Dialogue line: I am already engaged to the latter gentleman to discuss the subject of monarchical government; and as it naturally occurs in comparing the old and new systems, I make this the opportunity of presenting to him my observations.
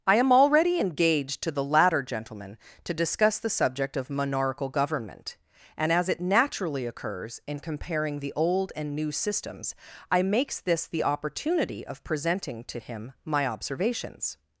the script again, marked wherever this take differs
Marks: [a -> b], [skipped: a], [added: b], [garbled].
I am already engaged to the latter gentleman to discuss the subject of monarchical government; and as it naturally occurs in comparing the old and new systems, I [make -> makes] this the opportunity of presenting to him my observations.